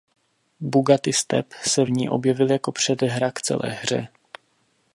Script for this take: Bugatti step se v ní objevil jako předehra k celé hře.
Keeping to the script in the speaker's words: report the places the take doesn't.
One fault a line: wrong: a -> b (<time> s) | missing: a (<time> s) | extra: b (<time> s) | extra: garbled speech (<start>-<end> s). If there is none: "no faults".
no faults